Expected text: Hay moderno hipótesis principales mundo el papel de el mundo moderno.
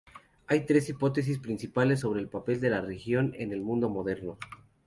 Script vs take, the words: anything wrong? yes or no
yes